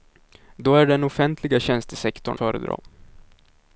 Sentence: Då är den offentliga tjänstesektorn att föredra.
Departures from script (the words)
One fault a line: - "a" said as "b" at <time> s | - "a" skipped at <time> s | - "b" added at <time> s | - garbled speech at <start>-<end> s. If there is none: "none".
- "att" skipped at 2.4 s